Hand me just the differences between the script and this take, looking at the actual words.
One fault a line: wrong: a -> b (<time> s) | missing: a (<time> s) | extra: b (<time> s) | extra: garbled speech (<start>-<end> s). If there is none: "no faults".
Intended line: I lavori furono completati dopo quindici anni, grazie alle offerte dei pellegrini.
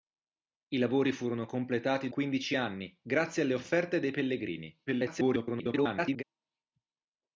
missing: dopo (2.1 s)
extra: garbled speech (4.9-6.2 s)